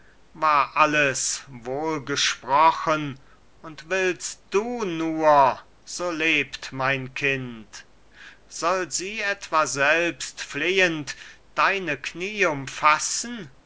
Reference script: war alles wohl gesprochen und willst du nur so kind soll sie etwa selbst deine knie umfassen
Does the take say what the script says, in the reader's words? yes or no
no